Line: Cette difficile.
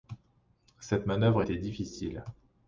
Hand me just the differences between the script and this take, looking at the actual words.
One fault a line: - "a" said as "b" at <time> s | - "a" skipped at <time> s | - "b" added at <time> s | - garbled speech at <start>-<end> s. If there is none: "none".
- "manœuvre était" added at 1.1 s